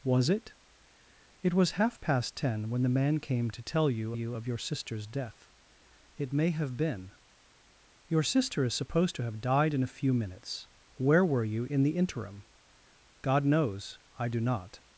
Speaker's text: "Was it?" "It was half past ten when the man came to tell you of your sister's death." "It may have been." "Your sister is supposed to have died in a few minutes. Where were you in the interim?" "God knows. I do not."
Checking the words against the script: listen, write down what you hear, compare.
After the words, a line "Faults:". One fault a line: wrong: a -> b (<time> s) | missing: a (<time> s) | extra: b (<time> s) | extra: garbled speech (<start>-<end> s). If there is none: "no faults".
"Was it?" "It was half past ten when the man came to tell you you of your sister's death." "It may have been." "Your sister is supposed to have died in a few minutes. Where were you in the interim?" "God knows. I do not."
Faults:
extra: you (4.1 s)